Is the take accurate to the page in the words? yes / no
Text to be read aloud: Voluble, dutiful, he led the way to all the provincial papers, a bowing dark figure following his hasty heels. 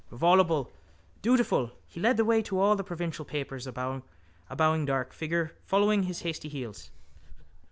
yes